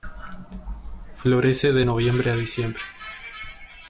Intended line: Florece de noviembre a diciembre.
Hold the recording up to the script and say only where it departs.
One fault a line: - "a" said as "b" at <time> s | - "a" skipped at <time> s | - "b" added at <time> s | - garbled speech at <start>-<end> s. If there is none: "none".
none